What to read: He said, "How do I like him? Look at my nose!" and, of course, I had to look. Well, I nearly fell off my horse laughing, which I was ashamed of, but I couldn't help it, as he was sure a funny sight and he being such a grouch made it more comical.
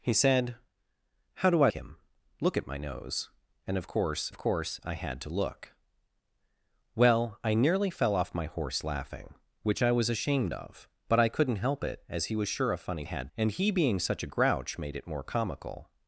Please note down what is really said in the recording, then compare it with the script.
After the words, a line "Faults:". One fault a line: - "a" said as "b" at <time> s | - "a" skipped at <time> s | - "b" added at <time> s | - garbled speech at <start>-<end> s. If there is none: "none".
He said, "How do I him? Look at my nose!" and, of course of course, I had to look. Well, I nearly fell off my horse laughing, which I was ashamed of, but I couldn't help it, as he was sure a funny had and he being such a grouch made it more comical.
Faults:
- "like" skipped at 1.7 s
- "of course" added at 4.3 s
- "sight" said as "had" at 13.0 s